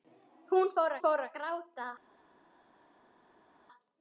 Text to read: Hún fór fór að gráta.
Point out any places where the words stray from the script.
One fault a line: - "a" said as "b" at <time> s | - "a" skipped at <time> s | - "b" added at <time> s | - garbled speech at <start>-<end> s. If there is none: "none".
none